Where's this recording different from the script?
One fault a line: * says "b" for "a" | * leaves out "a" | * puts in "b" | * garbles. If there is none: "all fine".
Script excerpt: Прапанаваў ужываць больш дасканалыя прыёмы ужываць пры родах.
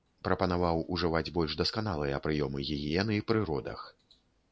* says "гігіены" for "ужываць"